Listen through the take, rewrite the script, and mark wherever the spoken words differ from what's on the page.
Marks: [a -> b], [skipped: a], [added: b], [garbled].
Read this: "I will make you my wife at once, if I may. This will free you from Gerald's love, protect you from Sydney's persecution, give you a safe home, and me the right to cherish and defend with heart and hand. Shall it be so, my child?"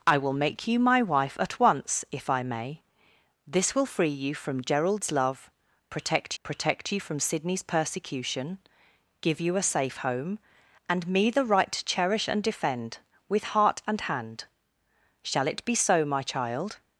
"I will make you my wife at once, if I may. This will free you from Gerald's love, protect [added: protect] you from Sydney's persecution, give you a safe home, and me the right to cherish and defend with heart and hand. Shall it be so, my child?"